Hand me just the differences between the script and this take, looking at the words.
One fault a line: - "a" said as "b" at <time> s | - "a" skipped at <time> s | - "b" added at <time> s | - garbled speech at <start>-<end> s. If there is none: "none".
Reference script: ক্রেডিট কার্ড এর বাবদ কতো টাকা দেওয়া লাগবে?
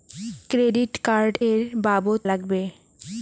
- "কতো টাকা দেওয়া" skipped at 2.2 s